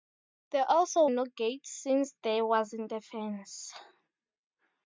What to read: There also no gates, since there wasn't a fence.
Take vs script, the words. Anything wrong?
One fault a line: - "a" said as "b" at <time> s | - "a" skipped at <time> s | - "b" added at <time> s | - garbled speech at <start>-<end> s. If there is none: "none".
none